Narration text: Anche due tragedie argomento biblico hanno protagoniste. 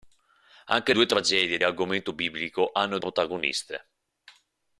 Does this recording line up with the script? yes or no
yes